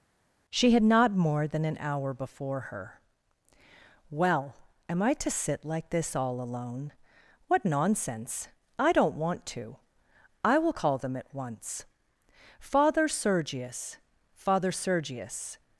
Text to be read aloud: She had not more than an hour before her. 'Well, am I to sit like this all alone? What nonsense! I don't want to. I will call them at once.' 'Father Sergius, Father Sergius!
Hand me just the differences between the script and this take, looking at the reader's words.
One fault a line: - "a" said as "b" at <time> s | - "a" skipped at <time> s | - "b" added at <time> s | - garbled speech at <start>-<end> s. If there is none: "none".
none